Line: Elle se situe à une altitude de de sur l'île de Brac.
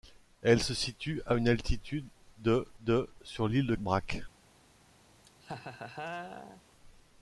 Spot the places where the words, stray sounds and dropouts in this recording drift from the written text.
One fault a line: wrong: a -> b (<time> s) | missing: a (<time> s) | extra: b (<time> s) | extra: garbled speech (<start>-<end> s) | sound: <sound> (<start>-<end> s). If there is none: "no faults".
sound: laugh (5.2-6.6 s)